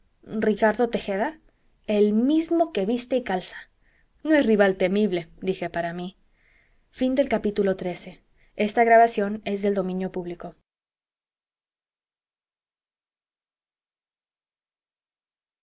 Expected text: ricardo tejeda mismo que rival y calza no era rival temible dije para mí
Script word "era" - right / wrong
wrong